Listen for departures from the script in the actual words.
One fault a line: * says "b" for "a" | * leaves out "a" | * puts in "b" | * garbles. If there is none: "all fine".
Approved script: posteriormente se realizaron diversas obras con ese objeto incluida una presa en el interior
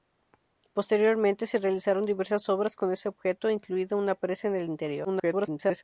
* garbles